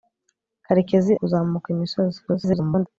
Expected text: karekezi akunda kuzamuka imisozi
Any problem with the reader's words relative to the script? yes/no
yes